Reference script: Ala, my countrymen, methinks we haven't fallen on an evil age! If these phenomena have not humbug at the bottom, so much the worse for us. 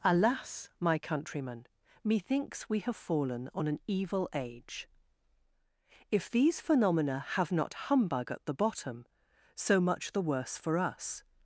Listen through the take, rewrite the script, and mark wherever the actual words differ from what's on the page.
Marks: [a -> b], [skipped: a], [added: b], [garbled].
[Ala, -> Alas] my countrymen, methinks we [haven't -> have] fallen on an evil age! If these phenomena have not humbug at the bottom, so much the worse for us.